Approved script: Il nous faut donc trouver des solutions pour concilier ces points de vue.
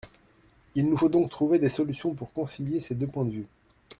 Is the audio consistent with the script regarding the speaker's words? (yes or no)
no